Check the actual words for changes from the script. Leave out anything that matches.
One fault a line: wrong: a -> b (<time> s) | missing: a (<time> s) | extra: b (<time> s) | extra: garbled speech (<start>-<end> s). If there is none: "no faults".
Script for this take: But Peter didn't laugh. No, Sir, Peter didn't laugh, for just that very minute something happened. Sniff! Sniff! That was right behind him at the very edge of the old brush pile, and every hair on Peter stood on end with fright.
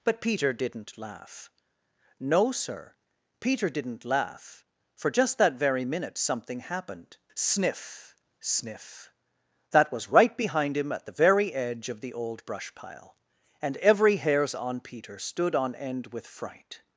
wrong: hair -> hairs (14.2 s)